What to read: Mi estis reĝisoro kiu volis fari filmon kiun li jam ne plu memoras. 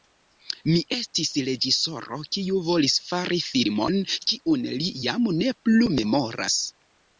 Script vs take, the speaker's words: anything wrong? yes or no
no